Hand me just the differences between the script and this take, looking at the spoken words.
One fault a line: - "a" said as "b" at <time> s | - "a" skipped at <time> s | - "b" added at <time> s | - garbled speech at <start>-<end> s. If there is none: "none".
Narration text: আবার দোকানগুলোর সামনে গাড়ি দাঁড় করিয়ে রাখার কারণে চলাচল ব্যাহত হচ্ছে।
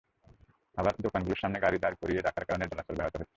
none